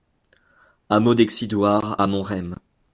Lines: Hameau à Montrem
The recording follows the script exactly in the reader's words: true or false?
false